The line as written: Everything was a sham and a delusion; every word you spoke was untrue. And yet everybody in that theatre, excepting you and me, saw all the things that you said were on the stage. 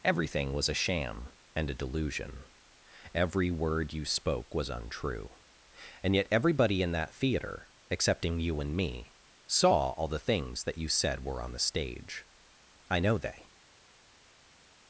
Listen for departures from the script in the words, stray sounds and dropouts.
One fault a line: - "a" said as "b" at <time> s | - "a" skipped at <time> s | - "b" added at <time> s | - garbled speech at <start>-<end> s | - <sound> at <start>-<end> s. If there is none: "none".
- "I know they" added at 12.9 s